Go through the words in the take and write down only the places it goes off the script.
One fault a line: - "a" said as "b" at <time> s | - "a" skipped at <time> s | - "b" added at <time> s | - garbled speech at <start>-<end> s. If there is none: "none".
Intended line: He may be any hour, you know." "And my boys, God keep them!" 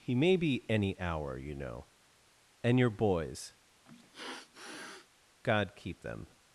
- "my" said as "your" at 2.8 s